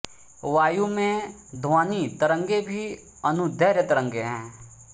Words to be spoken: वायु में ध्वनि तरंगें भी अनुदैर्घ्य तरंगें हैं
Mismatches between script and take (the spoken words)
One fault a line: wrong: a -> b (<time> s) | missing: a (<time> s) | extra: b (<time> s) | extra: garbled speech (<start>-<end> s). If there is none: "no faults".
no faults